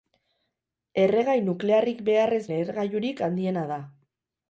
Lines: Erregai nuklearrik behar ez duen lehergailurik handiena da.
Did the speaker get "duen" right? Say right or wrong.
wrong